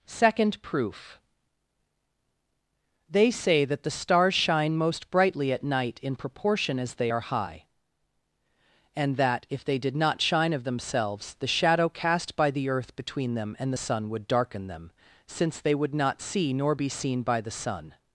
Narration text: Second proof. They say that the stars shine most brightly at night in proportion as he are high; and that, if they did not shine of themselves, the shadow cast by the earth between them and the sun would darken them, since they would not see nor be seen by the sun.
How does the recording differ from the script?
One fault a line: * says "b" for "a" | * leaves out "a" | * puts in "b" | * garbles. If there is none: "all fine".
* says "they" for "he"